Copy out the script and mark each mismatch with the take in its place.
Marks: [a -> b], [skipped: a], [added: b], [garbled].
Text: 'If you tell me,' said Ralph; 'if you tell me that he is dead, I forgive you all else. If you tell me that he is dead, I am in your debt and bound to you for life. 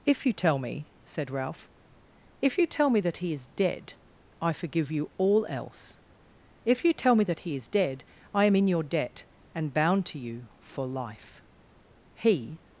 'If you tell me,' said Ralph; 'if you tell me that he is dead, I forgive you all else. If you tell me that he is dead, I am in your debt and bound to you for life. [added: He]